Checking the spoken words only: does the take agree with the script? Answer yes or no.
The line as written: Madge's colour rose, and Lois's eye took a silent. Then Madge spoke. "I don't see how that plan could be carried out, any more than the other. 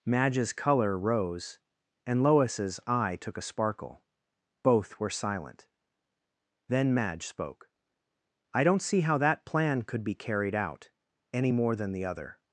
no